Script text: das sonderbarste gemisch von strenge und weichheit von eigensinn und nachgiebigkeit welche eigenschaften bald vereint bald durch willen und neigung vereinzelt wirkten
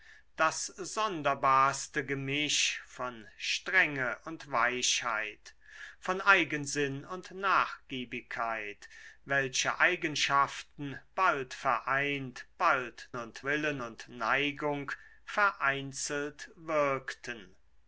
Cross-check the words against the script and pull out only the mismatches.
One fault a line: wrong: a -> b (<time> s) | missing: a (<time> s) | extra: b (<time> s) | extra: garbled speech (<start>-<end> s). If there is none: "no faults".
wrong: durch -> und (13.2 s)